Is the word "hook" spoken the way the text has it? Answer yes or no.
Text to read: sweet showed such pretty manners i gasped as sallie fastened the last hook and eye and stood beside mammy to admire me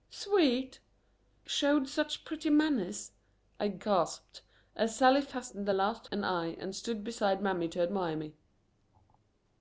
no